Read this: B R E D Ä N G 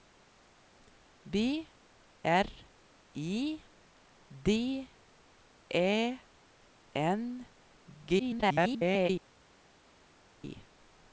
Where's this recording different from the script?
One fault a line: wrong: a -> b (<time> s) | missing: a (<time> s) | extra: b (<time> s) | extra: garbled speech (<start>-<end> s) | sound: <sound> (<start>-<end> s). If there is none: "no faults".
extra: garbled speech (8.2-9.1 s)